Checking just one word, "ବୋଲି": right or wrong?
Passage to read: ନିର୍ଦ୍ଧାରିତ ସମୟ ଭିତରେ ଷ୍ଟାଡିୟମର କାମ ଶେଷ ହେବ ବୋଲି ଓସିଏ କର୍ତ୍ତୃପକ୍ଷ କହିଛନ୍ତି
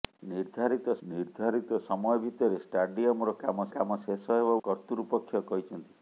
wrong